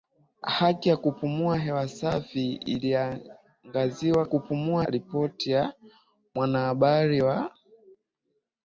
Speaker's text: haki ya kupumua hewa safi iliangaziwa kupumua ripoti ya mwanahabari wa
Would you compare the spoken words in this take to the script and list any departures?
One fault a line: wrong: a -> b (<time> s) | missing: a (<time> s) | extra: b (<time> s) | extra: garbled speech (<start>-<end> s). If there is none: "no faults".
no faults